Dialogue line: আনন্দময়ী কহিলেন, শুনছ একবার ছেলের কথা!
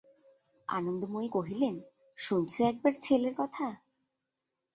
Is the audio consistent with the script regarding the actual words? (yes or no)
yes